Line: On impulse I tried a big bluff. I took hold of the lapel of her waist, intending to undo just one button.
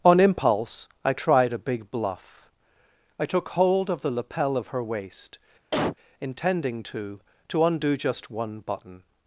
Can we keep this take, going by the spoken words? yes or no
no